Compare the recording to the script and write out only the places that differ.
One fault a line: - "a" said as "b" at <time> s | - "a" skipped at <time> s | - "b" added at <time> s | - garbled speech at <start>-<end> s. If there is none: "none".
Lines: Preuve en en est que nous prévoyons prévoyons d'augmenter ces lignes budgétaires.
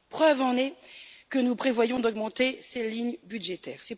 - "en" skipped at 0.6 s
- "prévoyons" skipped at 2.0 s